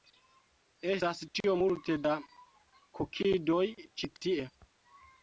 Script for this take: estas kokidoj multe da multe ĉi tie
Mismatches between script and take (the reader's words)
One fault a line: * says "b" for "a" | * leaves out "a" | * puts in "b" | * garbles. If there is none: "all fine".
* says "tiom" for "kokidoj"
* says "kokidoj" for "multe"